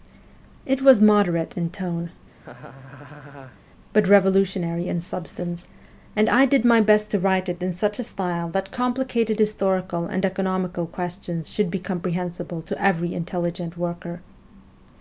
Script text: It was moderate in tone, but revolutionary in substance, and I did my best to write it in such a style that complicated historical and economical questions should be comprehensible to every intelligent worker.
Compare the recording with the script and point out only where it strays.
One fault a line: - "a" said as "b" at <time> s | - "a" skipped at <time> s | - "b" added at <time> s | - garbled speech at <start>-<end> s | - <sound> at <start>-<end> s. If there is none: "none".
- laugh at 2.3-3.6 s